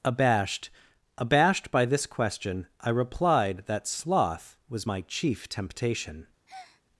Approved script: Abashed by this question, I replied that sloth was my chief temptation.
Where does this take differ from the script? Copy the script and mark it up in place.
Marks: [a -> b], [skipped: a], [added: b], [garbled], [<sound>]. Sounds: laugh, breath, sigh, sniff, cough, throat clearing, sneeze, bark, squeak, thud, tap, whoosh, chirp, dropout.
Abashed [added: abashed] by this question, I replied that sloth was my chief temptation. [breath]